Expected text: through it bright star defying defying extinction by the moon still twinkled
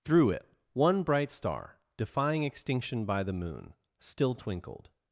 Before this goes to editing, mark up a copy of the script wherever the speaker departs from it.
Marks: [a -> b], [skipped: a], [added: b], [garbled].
through it [added: one] bright star defying [skipped: defying] extinction by the moon still twinkled